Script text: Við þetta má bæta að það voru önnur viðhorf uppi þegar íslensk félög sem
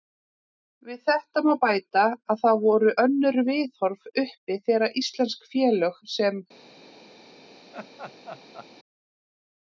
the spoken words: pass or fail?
pass